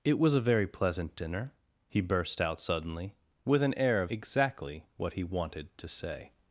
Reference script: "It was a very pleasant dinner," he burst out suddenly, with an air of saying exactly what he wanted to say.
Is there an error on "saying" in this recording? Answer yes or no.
yes